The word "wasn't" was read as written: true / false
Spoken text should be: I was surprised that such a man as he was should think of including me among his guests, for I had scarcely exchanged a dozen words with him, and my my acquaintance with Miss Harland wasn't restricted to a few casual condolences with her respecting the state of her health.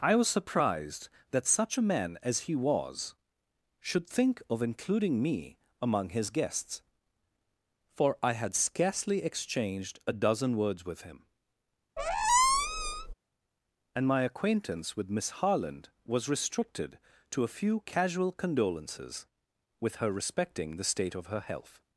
false